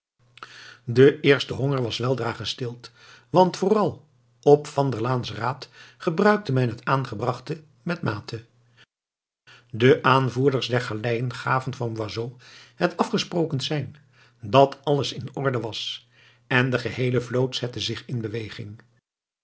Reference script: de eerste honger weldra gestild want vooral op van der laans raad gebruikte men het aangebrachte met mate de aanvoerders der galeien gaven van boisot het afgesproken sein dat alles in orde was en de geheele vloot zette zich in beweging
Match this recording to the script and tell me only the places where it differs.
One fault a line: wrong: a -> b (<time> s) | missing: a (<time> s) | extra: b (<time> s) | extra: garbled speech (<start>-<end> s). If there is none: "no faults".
extra: was (1.8 s)